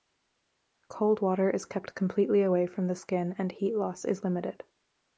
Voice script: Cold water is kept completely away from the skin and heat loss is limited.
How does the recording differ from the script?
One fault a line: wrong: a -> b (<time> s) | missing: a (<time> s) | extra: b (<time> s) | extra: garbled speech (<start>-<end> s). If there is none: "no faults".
no faults